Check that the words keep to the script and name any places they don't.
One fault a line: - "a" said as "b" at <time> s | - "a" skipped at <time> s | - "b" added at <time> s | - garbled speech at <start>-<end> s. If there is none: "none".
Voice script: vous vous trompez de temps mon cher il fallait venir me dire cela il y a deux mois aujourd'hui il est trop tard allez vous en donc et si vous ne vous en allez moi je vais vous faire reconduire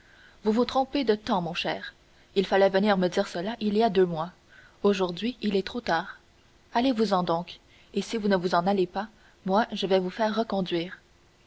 - "pas" added at 8.9 s